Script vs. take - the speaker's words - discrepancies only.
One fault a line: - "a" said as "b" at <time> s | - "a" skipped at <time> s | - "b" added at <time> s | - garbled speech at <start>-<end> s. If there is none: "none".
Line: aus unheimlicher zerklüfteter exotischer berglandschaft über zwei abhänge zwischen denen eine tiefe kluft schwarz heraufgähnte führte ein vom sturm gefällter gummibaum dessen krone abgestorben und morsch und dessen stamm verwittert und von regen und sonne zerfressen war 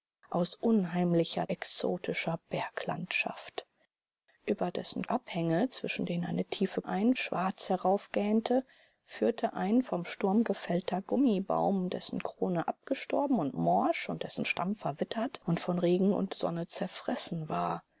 - "zerklüfteter" skipped at 1.5 s
- "zwei" said as "dessen" at 4.7 s
- "kluft" said as "ein" at 6.8 s